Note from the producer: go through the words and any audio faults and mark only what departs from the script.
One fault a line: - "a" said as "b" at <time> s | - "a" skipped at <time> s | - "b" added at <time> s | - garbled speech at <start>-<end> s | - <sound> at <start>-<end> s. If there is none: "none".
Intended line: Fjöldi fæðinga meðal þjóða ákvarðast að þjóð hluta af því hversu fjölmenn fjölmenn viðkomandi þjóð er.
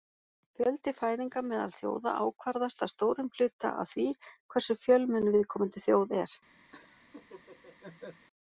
- "þjóð" said as "stórum" at 3.0 s
- "fjölmenn" skipped at 5.3 s
- laugh at 6.7-8.3 s